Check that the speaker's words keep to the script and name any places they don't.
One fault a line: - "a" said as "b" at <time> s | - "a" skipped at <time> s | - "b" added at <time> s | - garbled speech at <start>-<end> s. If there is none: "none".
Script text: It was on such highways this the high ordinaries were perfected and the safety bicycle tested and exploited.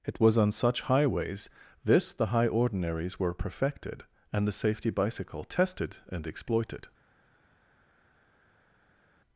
none